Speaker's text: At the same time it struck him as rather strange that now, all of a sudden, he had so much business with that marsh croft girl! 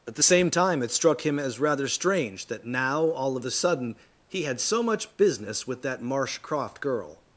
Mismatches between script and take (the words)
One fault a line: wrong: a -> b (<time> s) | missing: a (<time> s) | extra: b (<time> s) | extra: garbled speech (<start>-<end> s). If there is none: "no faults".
no faults